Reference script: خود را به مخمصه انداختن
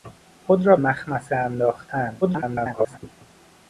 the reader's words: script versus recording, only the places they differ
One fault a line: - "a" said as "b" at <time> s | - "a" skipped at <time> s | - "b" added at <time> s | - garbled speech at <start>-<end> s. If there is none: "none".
- "به" skipped at 0.8 s
- garbled speech at 2.2-3.0 s